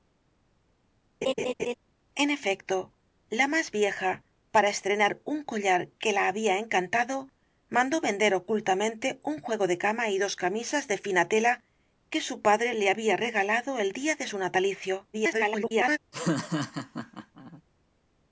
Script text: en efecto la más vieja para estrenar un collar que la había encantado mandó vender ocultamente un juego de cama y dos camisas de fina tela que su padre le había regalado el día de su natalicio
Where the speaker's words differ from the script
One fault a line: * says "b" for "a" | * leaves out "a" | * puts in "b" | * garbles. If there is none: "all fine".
* garbles